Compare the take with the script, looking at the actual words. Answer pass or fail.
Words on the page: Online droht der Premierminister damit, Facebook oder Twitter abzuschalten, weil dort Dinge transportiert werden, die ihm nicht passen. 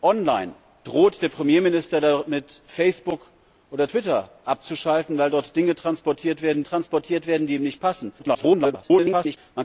fail